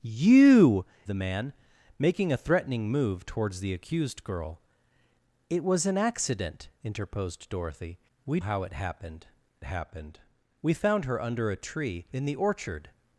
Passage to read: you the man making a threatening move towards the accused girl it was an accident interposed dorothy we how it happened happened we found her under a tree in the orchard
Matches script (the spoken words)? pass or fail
pass